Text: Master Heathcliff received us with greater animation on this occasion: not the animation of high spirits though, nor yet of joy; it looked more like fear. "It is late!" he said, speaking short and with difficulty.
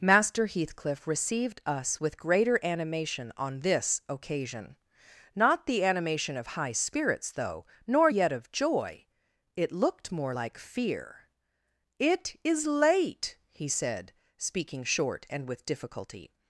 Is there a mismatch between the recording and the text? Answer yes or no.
no